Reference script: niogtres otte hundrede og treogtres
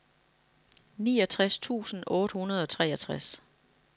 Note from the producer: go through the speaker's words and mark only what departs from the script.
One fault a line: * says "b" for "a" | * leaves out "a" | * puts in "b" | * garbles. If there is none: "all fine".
* puts in "tusind"